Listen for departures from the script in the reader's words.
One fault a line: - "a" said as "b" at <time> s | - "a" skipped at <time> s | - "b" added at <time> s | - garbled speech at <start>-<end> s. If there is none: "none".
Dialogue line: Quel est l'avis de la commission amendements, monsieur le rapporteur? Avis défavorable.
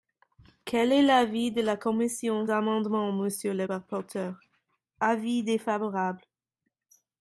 none